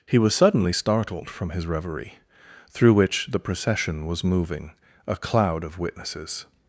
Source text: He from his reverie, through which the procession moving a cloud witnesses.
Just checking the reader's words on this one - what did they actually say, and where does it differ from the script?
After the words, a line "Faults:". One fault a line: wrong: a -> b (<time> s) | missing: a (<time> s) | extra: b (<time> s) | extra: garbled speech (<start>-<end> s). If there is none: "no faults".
He was suddenly startled from his reverie, through which the procession was moving a cloud of witnesses.
Faults:
extra: was suddenly startled (0.2 s)
extra: was (4.1 s)
extra: of (5.6 s)